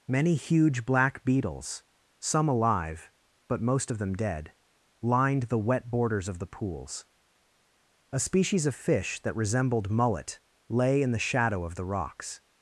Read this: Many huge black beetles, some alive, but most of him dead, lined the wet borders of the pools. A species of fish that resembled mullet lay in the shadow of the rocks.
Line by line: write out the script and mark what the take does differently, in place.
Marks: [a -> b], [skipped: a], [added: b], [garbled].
Many huge black beetles, some alive, but most of [him -> them] dead, lined the wet borders of the pools. A species of fish that resembled mullet lay in the shadow of the rocks.